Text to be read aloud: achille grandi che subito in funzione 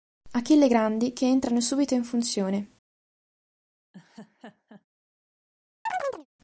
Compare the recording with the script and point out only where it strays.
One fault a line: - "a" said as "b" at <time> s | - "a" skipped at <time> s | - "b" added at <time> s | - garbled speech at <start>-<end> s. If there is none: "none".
- "entrano" added at 1.3 s